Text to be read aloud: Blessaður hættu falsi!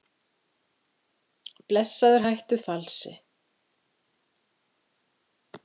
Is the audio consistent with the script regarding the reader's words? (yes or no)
yes